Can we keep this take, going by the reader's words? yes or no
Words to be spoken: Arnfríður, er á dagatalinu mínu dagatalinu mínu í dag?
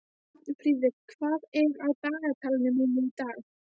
no